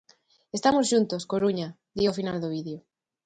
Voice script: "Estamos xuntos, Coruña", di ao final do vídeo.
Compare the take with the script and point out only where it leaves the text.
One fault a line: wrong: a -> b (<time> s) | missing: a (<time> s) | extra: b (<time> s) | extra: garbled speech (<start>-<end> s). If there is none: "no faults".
no faults